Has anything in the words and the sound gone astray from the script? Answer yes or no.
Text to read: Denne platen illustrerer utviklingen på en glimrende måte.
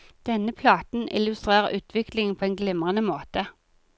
no